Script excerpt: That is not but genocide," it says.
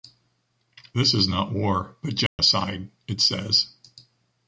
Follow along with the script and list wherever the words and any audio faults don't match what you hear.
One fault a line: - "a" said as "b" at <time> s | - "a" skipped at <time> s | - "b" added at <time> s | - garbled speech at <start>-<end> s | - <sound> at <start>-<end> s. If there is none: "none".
- "That" said as "This" at 0.9 s
- "war" added at 1.5 s
- dropout at 2.3-2.4 s